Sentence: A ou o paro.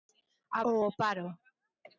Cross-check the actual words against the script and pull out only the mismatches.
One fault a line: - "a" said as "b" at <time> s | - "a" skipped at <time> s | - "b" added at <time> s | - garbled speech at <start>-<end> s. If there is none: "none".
none